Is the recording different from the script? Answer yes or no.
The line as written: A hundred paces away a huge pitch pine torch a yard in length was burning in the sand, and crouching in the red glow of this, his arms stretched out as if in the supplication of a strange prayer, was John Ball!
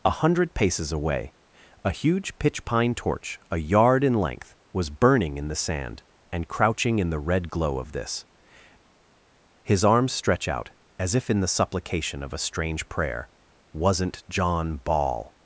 yes